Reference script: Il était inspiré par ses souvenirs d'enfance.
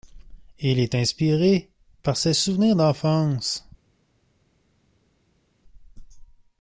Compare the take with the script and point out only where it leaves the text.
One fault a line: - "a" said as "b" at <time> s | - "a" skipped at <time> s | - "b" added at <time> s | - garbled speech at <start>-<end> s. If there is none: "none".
- "était" said as "est" at 0.8 s